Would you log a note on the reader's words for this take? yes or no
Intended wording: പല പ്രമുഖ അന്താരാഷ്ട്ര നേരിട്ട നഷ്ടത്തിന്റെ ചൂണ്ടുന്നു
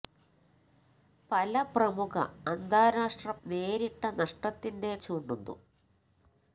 no